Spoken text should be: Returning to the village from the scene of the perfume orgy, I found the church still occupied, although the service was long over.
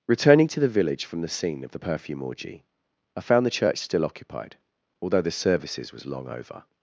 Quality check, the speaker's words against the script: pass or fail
fail